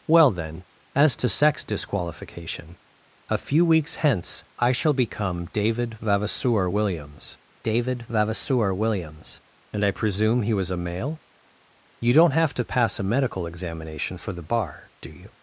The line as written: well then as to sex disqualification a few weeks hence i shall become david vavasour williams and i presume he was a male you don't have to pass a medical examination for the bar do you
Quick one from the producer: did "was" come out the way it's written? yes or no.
yes